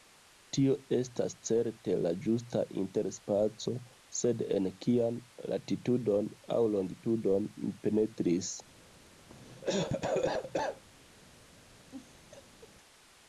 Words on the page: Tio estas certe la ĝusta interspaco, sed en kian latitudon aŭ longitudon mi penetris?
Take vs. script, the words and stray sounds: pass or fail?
fail